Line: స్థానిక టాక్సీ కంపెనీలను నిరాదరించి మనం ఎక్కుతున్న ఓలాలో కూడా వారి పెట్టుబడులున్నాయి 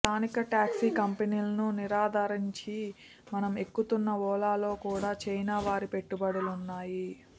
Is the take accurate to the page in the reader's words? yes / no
no